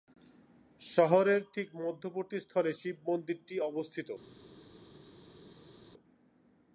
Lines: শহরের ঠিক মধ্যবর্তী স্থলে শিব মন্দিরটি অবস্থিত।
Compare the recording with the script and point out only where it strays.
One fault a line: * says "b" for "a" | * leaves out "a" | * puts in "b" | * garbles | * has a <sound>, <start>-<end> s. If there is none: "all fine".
all fine